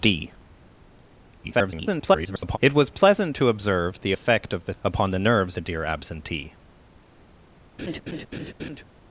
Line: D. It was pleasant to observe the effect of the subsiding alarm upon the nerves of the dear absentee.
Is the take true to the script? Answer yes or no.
no